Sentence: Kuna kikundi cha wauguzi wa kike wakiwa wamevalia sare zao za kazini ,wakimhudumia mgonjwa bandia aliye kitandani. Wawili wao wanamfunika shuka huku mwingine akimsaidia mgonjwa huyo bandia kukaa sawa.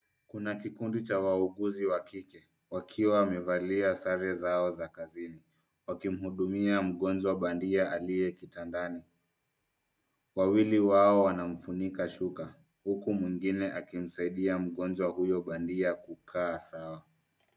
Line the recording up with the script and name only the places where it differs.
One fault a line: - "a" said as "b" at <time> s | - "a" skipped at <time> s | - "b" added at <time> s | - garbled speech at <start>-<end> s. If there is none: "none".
none